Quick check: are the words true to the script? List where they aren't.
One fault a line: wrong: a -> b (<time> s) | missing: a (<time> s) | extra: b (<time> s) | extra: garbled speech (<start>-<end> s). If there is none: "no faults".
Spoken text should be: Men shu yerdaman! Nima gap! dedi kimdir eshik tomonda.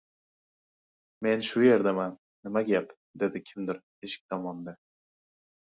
no faults